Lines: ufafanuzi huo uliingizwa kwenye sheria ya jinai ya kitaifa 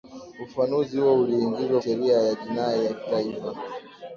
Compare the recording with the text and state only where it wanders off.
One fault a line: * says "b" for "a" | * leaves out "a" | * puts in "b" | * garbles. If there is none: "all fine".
* leaves out "kwenye"